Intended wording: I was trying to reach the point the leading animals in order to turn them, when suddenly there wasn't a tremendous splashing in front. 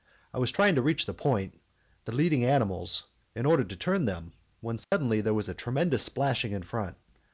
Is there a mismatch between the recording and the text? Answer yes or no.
yes